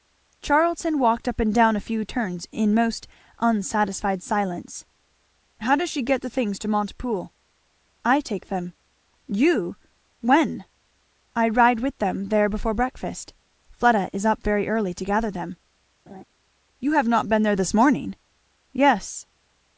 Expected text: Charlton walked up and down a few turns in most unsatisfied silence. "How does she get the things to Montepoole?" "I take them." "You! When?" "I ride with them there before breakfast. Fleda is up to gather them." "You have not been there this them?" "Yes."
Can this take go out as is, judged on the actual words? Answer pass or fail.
fail